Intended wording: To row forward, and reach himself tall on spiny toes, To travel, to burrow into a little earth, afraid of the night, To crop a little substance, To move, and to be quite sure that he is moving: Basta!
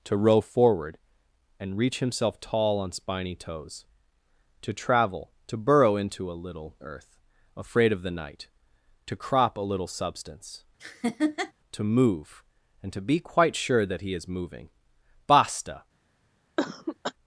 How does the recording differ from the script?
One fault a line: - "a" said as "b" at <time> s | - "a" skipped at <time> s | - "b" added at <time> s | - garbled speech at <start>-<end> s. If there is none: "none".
none